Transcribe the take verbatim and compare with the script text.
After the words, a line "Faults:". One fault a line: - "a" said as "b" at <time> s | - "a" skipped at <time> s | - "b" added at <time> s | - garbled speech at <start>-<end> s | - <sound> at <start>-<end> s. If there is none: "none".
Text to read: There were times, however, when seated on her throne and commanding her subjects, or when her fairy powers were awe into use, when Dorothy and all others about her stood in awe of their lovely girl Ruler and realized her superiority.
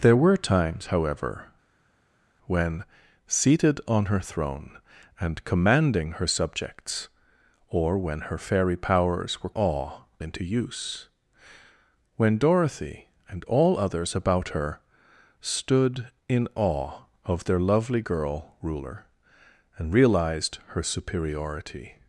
There were times, however, when seated on her throne and commanding her subjects, or when her fairy powers were awe into use, when Dorothy and all others about her stood in awe of their lovely girl Ruler and realized her superiority.
Faults:
none